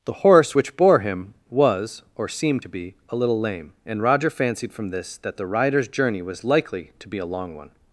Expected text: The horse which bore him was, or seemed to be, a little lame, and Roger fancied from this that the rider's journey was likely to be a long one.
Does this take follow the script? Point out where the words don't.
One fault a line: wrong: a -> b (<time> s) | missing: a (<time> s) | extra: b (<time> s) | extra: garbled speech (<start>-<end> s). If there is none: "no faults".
no faults